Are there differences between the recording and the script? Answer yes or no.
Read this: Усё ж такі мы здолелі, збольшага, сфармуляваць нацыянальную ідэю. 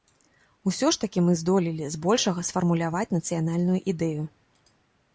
no